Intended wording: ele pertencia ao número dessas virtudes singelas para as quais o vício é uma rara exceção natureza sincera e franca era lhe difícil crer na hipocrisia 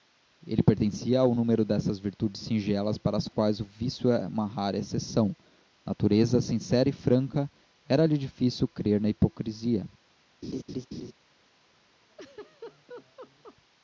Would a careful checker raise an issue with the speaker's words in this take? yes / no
no